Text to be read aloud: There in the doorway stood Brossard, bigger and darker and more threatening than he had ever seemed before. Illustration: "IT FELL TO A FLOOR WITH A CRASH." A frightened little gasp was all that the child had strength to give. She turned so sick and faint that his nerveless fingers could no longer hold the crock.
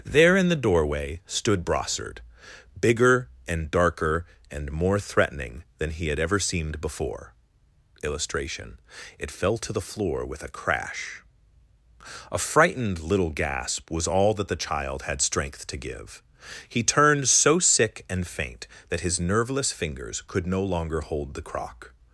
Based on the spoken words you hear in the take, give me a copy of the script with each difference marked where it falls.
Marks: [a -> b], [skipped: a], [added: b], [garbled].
There in the doorway stood Brossard, bigger and darker and more threatening than he had ever seemed before. Illustration: "IT FELL TO [A -> THE] FLOOR WITH A CRASH." A frightened little gasp was all that the child had strength to give. [She -> He] turned so sick and faint that his nerveless fingers could no longer hold the crock.